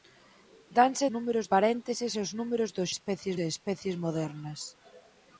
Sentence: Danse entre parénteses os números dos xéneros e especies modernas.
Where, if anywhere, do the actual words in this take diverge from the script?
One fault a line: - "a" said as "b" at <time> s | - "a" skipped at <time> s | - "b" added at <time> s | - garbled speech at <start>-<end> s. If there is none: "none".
- "entre" said as "números" at 1.1 s
- "xéneros" said as "especies" at 2.9 s